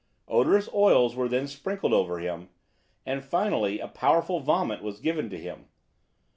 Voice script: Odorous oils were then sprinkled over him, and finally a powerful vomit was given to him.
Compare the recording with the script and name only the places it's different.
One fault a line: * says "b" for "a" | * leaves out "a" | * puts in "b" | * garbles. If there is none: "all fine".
all fine